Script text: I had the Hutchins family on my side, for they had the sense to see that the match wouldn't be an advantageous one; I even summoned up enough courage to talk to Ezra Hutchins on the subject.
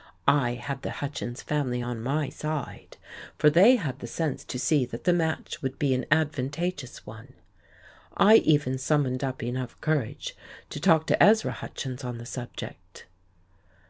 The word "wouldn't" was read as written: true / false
false